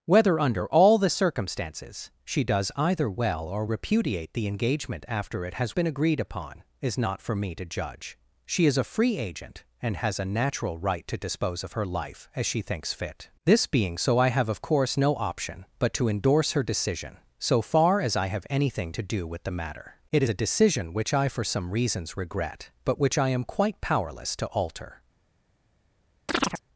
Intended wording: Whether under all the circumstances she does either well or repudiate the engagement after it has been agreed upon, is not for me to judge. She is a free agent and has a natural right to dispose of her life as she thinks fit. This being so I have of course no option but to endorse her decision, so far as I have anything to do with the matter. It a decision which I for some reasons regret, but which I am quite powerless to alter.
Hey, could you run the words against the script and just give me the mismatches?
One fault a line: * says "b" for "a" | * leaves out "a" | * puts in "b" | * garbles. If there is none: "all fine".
all fine